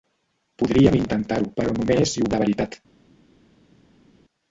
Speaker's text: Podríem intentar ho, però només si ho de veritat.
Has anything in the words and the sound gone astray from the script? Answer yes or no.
no